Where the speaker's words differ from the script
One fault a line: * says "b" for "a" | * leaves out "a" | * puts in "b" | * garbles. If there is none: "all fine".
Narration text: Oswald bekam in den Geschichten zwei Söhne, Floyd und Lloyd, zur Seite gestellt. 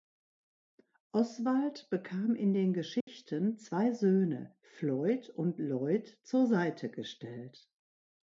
all fine